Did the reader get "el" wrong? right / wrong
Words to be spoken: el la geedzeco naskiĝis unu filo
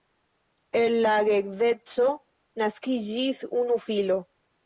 right